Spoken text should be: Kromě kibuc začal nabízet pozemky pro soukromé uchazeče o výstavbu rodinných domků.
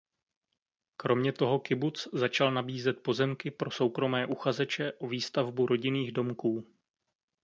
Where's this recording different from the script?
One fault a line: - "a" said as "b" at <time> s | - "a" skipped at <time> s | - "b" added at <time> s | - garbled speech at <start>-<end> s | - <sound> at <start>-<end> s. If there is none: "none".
- "toho" added at 1.3 s